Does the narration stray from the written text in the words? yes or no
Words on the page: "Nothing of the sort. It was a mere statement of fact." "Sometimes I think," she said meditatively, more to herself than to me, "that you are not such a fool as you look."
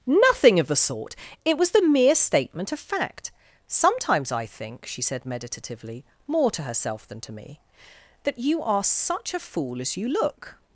yes